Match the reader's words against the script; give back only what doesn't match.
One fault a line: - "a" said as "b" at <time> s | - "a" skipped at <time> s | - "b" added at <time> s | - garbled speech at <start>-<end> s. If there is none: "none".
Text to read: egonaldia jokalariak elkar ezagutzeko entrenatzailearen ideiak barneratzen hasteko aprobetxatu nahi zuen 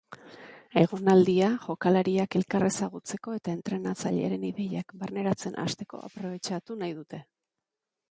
- "eta" added at 3.4 s
- "zuen" said as "dute" at 7.0 s